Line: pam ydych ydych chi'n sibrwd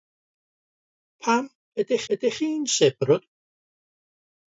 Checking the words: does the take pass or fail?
pass